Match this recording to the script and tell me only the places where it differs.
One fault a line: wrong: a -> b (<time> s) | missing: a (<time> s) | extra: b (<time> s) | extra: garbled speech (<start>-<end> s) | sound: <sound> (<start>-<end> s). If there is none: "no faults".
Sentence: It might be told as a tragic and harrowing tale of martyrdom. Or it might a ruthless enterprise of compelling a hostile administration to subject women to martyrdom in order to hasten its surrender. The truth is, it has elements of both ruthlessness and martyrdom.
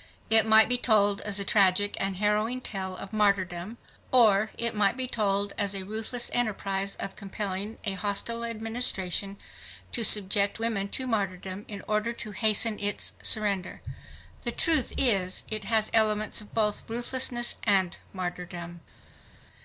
extra: be told as (5.0 s)